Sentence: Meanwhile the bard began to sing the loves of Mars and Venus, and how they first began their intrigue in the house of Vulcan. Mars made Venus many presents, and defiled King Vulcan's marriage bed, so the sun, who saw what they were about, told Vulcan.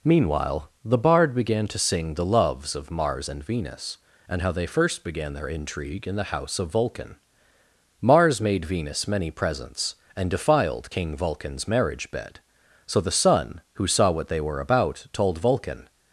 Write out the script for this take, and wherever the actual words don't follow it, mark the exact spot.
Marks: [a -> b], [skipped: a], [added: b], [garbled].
Meanwhile the bard began to sing the loves of Mars and Venus, and how they first began their intrigue in the house of Vulcan. Mars made Venus many presents, and defiled King Vulcan's marriage bed, so the sun, who saw what they were about, told Vulcan.